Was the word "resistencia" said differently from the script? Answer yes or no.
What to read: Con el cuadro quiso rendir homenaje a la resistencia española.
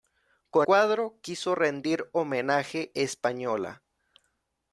yes